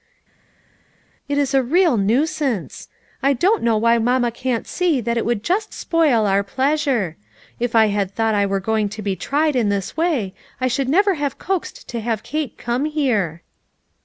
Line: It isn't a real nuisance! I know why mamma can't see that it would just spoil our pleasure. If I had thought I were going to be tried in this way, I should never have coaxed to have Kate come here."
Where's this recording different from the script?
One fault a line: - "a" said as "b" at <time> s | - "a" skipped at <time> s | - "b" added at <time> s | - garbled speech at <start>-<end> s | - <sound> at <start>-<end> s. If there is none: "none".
- "isn't" said as "is" at 1.4 s
- "don't" added at 3.3 s